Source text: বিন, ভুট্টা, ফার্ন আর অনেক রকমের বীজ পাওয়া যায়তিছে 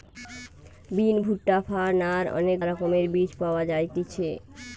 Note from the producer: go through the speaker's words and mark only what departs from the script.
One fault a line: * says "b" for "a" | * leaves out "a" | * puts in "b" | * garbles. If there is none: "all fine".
all fine